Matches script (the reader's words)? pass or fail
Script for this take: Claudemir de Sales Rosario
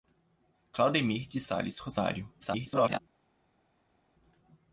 fail